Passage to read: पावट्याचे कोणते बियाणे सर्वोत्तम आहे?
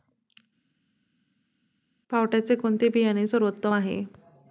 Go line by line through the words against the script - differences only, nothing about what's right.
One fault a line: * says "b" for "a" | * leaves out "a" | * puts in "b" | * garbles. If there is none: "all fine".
all fine